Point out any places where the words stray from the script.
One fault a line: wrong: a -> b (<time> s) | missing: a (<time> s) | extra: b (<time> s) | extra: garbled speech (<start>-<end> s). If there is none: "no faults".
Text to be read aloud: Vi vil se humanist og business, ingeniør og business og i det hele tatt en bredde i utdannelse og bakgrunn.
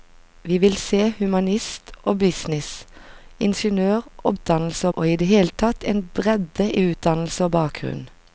wrong: business -> utdannelse (4.3 s)